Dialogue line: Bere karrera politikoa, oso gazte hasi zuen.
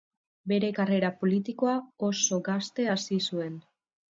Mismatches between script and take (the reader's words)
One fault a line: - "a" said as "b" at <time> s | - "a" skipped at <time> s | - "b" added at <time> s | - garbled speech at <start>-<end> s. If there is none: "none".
none